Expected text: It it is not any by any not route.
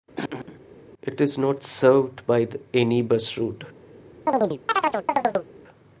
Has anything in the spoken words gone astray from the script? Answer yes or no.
yes